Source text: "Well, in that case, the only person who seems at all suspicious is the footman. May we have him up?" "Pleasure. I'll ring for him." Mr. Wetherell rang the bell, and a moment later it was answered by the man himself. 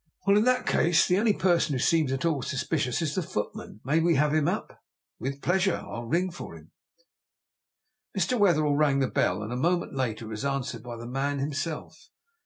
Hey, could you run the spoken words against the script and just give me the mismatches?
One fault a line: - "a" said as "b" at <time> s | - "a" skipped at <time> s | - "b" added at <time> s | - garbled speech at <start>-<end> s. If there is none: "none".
- "With" added at 5.2 s